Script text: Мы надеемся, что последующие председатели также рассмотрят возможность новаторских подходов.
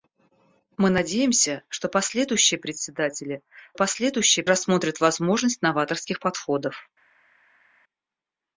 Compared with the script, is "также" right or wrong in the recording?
wrong